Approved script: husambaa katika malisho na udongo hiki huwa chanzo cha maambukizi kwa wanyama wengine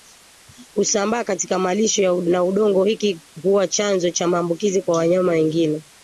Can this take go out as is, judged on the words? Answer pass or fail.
pass